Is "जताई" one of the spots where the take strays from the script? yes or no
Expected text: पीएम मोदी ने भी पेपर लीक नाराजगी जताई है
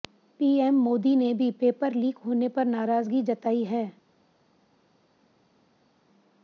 no